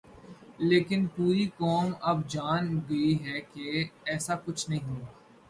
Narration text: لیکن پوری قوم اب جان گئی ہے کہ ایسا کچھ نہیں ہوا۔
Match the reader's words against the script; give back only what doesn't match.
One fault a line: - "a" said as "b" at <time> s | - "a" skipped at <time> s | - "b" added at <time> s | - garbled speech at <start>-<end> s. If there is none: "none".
none